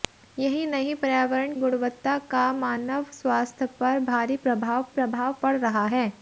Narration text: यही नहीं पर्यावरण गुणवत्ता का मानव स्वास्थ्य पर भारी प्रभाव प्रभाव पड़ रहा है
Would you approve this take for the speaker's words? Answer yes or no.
yes